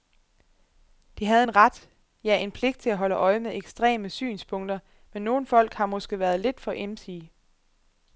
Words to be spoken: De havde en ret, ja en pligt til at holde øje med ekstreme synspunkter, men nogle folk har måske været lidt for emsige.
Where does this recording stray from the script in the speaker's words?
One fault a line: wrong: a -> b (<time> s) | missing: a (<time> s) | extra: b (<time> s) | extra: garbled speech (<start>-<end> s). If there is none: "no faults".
no faults